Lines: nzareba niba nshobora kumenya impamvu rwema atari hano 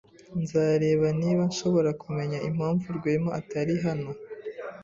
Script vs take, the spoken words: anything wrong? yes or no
no